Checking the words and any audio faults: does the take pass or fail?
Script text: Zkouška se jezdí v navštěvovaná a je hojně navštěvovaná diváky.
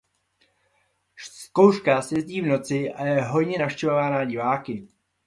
fail